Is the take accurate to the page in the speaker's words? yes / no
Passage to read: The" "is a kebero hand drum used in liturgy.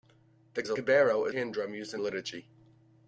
yes